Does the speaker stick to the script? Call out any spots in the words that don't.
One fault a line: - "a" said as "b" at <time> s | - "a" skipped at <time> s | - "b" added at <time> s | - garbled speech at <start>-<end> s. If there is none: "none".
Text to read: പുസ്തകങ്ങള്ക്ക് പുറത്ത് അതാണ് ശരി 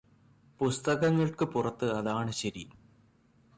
none